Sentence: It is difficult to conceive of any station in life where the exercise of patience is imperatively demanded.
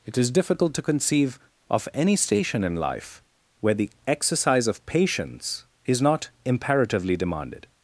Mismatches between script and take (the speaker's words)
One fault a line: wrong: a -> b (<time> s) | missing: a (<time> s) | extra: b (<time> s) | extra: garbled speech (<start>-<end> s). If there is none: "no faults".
extra: not (6.0 s)